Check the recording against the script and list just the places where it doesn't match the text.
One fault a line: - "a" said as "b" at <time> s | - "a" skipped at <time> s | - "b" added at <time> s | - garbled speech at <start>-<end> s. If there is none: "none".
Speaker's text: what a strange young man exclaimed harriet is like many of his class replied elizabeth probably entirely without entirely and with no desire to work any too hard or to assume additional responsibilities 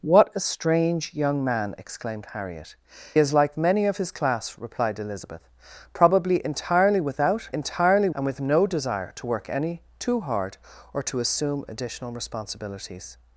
none